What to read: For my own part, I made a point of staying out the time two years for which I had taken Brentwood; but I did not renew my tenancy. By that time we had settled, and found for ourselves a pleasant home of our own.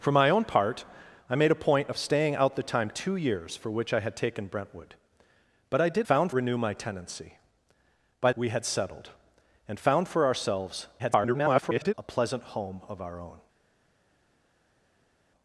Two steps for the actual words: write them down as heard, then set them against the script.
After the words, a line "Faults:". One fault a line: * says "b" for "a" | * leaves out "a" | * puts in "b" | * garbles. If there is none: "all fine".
For my own part, I made a point of staying out the time two years for which I had taken Brentwood; but I did found renew my tenancy. By we had settled, and found for ourselves [garbled] a pleasant home of our own.
Faults:
* says "found" for "not"
* leaves out "that time"
* garbles